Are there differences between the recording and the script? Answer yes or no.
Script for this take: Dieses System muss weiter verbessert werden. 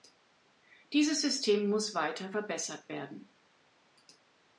no